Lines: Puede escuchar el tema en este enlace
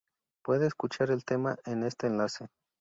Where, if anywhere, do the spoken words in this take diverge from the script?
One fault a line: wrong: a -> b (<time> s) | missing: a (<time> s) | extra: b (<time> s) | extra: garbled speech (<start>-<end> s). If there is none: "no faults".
no faults